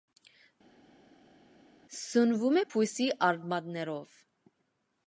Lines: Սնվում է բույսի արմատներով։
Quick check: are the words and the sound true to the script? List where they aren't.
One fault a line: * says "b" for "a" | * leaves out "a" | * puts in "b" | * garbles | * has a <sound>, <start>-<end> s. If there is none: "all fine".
all fine